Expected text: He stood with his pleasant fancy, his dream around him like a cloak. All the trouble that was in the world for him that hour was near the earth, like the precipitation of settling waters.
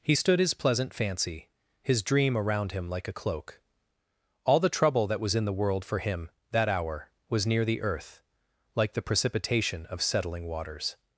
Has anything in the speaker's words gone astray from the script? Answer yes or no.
yes